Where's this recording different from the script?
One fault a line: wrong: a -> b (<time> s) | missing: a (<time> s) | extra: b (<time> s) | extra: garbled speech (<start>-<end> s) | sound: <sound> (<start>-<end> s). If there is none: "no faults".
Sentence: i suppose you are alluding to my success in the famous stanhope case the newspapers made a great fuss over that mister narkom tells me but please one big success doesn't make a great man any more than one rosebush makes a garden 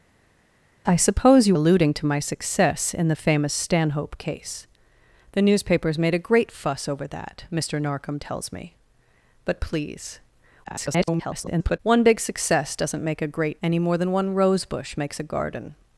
missing: are (1.6 s)
extra: garbled speech (10.6-11.8 s)
missing: man (13.6 s)